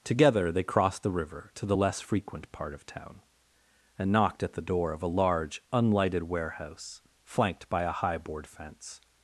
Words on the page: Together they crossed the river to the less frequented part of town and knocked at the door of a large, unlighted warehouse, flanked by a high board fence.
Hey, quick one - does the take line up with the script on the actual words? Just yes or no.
no